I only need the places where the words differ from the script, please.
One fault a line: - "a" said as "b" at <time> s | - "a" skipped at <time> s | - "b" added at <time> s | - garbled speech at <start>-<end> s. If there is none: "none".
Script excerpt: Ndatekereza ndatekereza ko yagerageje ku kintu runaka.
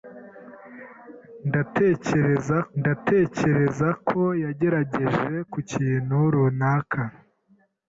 none